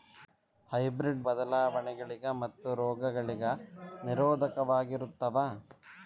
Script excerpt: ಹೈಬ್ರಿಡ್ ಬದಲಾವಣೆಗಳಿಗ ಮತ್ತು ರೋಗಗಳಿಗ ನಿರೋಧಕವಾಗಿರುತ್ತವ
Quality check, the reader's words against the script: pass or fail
pass